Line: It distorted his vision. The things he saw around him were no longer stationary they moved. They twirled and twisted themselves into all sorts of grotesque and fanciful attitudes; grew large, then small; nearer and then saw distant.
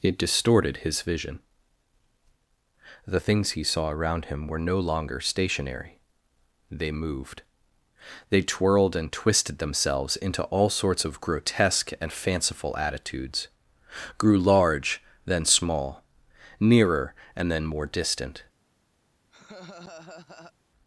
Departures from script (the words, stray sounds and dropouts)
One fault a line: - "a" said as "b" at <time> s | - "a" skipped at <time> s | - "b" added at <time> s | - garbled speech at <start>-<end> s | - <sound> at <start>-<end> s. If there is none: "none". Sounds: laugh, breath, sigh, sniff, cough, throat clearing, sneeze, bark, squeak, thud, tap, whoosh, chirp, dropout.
- "saw" said as "more" at 17.6 s
- laugh at 19.3-20.5 s